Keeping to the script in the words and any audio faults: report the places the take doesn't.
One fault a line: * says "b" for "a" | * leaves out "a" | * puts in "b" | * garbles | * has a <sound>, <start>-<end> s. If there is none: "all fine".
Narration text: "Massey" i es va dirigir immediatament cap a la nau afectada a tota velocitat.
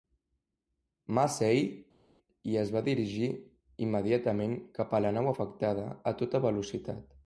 all fine